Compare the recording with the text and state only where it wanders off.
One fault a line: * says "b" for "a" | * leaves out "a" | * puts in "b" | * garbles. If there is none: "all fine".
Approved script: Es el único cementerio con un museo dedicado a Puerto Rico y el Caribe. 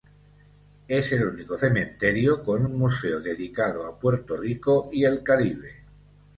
all fine